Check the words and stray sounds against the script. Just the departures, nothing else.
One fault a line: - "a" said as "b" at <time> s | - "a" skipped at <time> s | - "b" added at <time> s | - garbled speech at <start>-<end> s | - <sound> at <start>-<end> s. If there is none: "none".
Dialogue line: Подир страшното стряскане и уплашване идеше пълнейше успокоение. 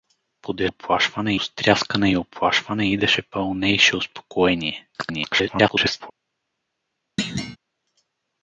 - "страшното" said as "уплашване" at 0.6 s
- garbled speech at 4.9-6.1 s
- thud at 7.2-7.6 s